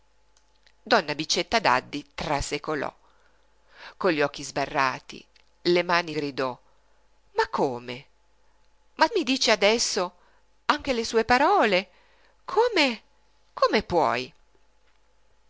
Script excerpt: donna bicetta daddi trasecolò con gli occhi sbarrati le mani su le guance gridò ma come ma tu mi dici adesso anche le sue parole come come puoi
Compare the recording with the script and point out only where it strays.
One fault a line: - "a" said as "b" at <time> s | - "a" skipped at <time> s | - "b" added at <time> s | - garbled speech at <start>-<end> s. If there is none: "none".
- "su le guance" skipped at 6.2 s
- "tu" skipped at 9.1 s